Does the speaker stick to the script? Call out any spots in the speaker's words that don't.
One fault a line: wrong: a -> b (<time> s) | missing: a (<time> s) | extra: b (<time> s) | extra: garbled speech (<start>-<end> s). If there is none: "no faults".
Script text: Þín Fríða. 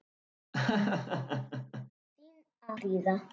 no faults